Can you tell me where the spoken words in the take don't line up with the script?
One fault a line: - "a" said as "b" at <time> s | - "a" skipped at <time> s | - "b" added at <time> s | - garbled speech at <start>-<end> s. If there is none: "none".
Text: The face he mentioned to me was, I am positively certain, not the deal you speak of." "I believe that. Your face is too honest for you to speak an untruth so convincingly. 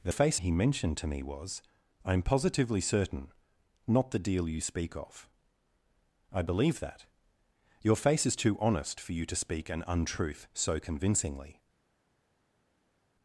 none